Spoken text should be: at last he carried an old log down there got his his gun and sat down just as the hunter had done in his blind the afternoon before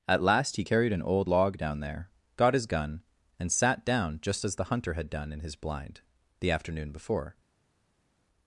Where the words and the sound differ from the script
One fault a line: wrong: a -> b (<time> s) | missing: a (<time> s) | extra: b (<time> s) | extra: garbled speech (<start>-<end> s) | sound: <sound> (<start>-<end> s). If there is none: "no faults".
missing: his (2.7 s)